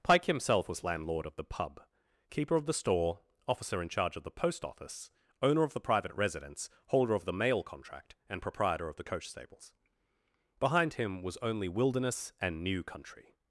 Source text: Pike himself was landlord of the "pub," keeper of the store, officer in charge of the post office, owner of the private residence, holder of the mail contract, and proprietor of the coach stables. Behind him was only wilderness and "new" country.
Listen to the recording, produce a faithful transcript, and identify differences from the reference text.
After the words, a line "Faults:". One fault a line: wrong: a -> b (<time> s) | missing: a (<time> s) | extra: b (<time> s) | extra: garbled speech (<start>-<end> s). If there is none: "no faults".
Pike himself was landlord of the "pub," keeper of the store, officer in charge of the post office, owner of the private residence, holder of the mail contract, and proprietor of the coach stables. Behind him was only wilderness and "new" country.
Faults:
no faults